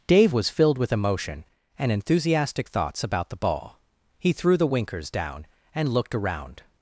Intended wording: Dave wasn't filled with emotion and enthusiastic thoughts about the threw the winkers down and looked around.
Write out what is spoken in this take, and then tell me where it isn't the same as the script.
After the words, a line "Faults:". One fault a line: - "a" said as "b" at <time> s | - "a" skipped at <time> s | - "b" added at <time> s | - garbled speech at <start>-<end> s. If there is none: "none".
Dave was filled with emotion and enthusiastic thoughts about the ball. He threw the winkers down and looked around.
Faults:
- "wasn't" said as "was" at 0.3 s
- "ball He" added at 3.4 s